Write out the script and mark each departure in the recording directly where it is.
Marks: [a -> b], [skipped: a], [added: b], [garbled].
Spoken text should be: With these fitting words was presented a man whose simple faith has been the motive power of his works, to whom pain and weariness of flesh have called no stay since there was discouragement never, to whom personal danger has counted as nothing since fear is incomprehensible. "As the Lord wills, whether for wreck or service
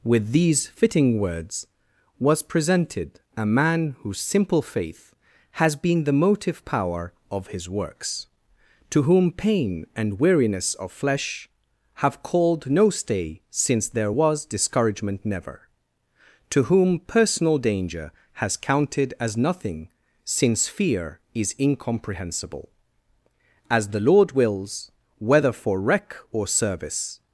With these fitting words was presented a man whose simple faith has been the motive power of his works, to whom pain and weariness of flesh have called no stay since there was discouragement never, to whom personal danger has counted as nothing since fear is incomprehensible. "As the Lord wills, whether for wreck or service